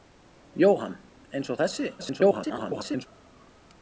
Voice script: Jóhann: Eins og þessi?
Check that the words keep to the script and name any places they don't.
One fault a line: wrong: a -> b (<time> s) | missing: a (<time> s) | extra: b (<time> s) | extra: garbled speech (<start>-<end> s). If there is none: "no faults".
extra: garbled speech (2.0-3.1 s)